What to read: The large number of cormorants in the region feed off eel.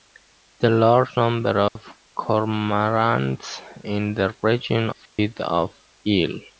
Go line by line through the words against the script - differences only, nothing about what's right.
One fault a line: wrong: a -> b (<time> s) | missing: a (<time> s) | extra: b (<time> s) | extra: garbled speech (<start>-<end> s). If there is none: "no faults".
no faults